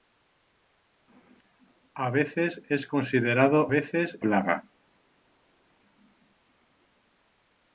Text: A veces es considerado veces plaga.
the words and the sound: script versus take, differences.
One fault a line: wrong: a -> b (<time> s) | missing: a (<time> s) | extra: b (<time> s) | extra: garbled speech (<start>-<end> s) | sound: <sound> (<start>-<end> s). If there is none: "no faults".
no faults